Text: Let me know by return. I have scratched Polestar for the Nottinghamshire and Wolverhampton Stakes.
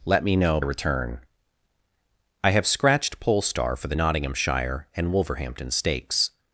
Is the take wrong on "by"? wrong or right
wrong